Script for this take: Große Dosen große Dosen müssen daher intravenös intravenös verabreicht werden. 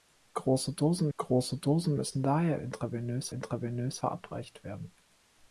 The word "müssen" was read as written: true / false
true